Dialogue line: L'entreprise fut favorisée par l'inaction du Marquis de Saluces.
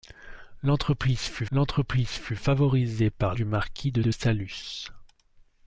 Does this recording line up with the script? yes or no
no